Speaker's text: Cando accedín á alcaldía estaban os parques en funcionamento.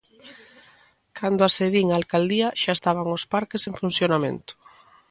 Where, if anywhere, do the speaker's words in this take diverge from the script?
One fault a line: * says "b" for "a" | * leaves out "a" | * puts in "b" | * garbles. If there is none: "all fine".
* puts in "xa"